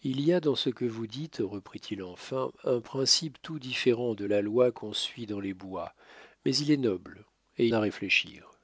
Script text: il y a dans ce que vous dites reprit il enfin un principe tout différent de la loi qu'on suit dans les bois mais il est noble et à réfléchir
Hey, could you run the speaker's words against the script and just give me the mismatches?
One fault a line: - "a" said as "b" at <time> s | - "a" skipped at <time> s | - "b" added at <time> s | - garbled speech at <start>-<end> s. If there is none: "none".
none